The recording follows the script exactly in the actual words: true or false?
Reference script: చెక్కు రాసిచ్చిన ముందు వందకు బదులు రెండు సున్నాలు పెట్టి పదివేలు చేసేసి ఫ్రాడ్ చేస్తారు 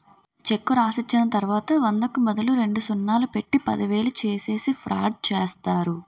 false